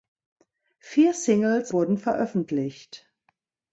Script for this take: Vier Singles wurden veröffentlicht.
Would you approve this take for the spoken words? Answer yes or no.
yes